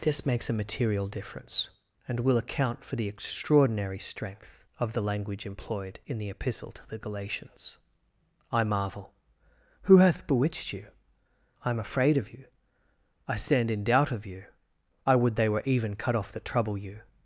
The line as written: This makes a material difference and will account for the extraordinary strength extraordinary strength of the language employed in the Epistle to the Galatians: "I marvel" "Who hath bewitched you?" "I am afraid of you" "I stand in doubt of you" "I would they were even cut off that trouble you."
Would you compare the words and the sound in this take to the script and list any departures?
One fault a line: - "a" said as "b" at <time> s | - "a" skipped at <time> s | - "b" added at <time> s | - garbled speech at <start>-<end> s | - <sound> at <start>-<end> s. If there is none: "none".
- "extraordinary strength" skipped at 4.7 s